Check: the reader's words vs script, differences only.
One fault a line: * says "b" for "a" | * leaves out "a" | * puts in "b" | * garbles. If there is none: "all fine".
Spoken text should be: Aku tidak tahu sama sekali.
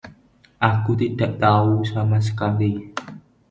all fine